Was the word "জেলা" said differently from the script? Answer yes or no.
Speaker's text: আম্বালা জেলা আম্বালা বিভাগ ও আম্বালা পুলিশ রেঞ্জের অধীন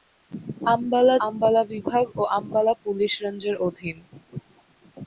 yes